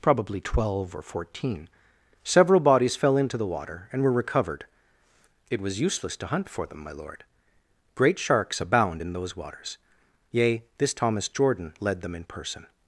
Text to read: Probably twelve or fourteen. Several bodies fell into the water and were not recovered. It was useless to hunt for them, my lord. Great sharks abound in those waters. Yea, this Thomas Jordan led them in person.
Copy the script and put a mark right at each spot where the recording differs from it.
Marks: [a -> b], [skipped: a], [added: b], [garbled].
Probably twelve or fourteen. Several bodies fell into the water and were [skipped: not] recovered. It was useless to hunt for them, my lord. Great sharks abound in those waters. Yea, this Thomas Jordan led them in person.